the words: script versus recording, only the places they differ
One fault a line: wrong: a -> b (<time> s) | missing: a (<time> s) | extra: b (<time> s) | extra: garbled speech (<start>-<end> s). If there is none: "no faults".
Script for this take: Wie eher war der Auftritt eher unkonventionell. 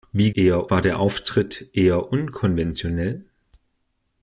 no faults